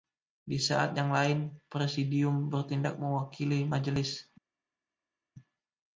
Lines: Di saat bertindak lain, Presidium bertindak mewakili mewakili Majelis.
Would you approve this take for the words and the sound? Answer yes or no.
no